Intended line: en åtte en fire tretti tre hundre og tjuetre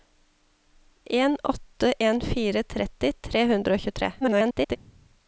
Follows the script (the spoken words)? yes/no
no